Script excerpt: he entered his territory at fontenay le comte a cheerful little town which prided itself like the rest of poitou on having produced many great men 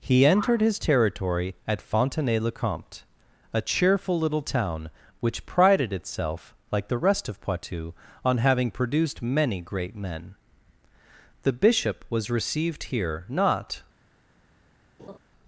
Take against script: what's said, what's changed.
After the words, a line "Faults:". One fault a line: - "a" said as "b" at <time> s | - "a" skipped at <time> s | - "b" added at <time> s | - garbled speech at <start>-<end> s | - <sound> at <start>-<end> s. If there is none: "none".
he entered his territory at fontenay le comte a cheerful little town which prided itself like the rest of poitou on having produced many great men the bishop was received here not
Faults:
- "the bishop was received here not" added at 11.4 s
- laugh at 15.0-15.2 s